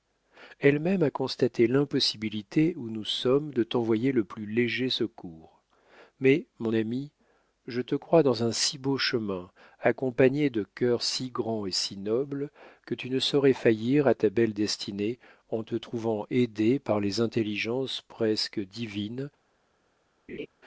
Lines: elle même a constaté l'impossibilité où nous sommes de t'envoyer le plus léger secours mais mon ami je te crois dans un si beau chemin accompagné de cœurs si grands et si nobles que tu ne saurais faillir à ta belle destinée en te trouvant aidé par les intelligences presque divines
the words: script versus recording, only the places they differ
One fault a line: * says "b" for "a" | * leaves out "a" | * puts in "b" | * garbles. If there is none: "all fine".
all fine